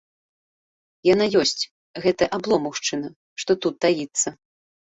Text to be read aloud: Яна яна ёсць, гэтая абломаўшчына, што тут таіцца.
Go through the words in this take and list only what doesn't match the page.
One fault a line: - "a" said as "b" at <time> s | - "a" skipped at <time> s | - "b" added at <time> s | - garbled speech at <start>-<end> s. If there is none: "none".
- "яна" skipped at 1.3 s